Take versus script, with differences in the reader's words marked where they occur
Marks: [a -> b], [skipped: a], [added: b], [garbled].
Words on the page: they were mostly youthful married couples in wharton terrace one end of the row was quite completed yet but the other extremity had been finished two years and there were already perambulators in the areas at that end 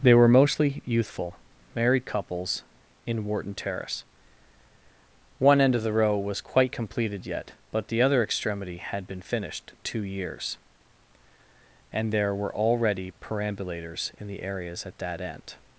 they were mostly youthful married couples in wharton terrace one end of the row was quite completed yet but the other extremity had been finished two years and there were already perambulators in the areas at that end